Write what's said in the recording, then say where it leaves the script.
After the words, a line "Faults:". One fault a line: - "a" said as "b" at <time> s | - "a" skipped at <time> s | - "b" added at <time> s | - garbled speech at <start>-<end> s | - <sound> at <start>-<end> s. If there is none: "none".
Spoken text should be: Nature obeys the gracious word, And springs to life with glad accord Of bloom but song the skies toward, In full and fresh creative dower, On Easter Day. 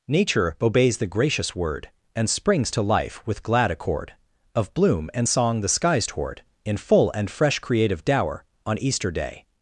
Nature obeys the gracious word, And springs to life with glad accord Of bloom and song the skies toward, In full and fresh creative dower, On Easter Day.
Faults:
- "but" said as "and" at 5.1 s